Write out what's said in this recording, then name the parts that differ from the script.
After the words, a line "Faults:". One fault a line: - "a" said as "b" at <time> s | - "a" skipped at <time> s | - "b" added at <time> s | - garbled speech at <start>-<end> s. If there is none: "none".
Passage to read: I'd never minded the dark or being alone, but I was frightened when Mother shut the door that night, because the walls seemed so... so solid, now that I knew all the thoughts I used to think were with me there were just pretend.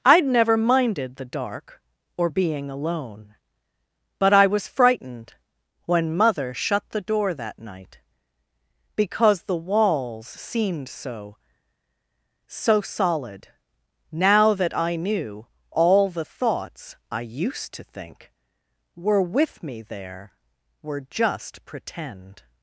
I'd never minded the dark or being alone, but I was frightened when Mother shut the door that night, because the walls seemed so... so solid, now that I knew all the thoughts I used to think were with me there were just pretend.
Faults:
none